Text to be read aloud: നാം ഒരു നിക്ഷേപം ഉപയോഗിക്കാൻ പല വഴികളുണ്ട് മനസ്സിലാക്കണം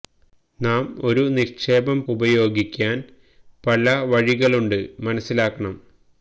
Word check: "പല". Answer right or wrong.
right